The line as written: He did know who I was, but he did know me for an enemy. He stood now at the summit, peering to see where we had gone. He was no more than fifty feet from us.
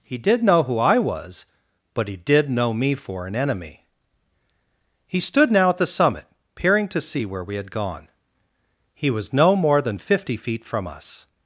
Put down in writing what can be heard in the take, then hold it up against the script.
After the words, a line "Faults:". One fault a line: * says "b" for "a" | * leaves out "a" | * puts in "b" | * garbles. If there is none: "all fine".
He did know who I was, but he did know me for an enemy. He stood now at the summit, peering to see where we had gone. He was no more than fifty feet from us.
Faults:
all fine